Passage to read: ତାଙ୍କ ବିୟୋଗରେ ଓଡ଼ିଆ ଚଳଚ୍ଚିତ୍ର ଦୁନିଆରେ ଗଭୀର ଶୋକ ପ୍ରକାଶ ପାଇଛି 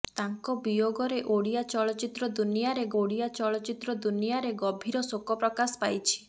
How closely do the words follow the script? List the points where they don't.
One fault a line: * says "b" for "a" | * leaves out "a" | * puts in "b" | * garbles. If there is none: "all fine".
* puts in "ଓଡ଼ିଆ ଚଳଚ୍ଚିତ୍ର ଦୁନିଆରେ"